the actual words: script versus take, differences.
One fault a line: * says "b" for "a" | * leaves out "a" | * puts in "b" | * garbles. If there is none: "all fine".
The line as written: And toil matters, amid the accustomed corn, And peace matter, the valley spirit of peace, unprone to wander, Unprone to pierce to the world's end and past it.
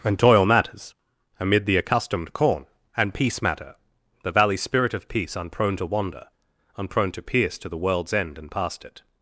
all fine